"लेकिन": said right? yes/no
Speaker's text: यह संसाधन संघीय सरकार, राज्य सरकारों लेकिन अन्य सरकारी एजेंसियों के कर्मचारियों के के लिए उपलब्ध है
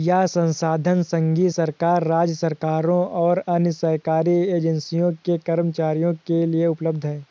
no